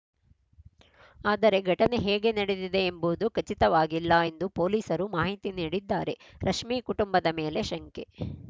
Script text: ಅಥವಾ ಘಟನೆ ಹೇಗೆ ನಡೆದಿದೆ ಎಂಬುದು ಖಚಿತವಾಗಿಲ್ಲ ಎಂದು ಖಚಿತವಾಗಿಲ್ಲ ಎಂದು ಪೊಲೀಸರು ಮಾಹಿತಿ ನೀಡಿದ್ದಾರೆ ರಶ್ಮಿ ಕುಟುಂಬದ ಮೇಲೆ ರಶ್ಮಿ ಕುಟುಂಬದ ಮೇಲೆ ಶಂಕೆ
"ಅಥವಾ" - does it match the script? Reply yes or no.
no